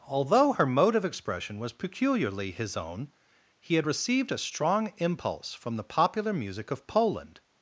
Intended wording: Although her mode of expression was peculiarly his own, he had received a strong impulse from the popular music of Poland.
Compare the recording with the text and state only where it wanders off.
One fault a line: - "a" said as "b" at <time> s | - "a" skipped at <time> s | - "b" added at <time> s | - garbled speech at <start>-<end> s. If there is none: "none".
none